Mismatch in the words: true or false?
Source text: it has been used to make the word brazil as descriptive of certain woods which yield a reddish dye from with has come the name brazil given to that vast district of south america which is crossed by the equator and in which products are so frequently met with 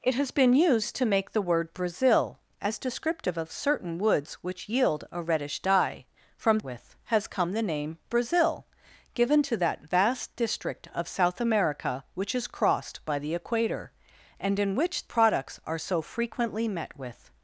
false